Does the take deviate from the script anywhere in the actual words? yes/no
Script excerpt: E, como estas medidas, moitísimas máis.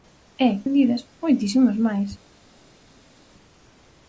yes